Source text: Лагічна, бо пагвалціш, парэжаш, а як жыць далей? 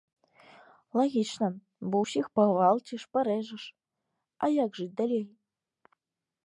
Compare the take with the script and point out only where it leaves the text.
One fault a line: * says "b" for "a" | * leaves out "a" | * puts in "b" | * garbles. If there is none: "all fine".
* puts in "ўсіх"